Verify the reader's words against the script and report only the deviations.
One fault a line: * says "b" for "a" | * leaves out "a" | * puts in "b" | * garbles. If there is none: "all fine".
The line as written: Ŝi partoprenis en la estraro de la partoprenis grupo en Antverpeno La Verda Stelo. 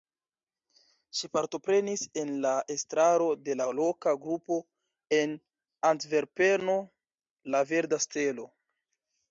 * says "loka" for "partoprenis"